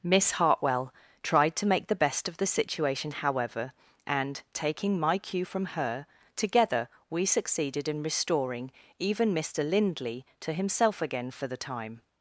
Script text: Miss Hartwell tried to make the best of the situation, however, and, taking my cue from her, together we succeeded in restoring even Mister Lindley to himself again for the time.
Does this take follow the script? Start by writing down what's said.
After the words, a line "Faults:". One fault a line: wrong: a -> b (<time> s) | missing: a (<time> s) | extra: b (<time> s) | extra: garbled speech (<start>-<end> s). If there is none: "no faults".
Miss Hartwell tried to make the best of the situation, however, and, taking my cue from her, together we succeeded in restoring even Mister Lindley to himself again for the time.
Faults:
no faults